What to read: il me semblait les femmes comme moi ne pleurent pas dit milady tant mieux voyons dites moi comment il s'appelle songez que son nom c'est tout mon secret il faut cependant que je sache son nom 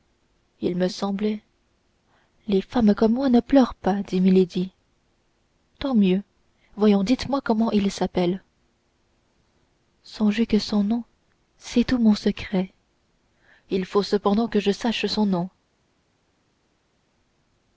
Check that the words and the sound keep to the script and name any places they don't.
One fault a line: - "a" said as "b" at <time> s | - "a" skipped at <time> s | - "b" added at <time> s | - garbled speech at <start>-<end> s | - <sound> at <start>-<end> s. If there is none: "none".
none